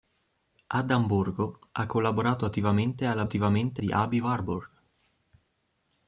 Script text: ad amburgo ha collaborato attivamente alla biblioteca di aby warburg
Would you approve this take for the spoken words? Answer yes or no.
no